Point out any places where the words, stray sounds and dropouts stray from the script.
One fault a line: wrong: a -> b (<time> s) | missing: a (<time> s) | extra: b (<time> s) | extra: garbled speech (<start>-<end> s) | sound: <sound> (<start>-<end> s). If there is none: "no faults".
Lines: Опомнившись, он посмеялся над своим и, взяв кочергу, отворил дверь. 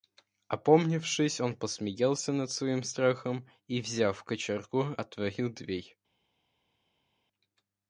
extra: страхом (2.8 s)